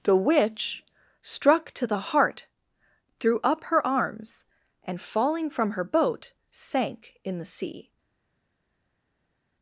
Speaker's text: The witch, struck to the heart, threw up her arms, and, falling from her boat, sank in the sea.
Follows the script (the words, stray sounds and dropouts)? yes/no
yes